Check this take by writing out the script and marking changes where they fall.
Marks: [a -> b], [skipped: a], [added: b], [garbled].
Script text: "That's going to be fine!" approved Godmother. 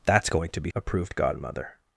"That's going to be [skipped: fine!"] approved Godmother.